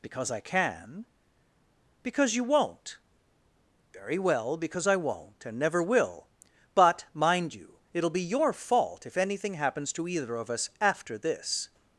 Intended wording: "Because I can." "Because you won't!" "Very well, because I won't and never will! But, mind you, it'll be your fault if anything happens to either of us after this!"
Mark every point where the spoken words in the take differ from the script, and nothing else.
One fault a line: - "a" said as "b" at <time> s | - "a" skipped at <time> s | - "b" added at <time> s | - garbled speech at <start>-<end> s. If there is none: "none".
none